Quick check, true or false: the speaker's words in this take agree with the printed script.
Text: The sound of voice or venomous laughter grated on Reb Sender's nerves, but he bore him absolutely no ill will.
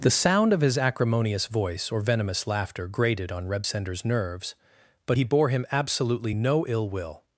false